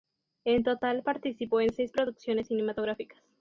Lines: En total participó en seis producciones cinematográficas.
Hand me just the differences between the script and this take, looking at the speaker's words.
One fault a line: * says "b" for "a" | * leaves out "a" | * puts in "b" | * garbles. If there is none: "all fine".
all fine